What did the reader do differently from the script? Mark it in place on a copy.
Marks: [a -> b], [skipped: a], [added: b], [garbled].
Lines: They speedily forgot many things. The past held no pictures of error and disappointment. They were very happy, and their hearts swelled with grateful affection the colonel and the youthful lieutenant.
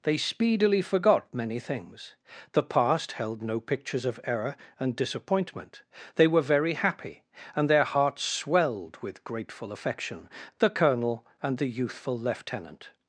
They speedily forgot many things. The past held no pictures of error and disappointment. They were very happy, and their hearts swelled with grateful affection the colonel and the youthful lieutenant.